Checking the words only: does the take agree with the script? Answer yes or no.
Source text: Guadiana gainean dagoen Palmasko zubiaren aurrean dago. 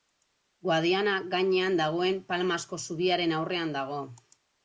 yes